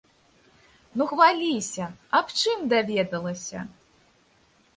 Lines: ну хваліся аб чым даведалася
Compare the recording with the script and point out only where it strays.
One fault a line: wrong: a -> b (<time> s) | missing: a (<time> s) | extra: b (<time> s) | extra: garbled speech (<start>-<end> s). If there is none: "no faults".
no faults